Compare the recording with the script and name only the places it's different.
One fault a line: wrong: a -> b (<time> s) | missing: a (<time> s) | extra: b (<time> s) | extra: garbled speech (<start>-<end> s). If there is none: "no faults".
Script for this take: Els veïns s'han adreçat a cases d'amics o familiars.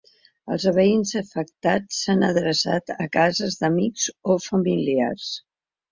extra: afectats (1.2 s)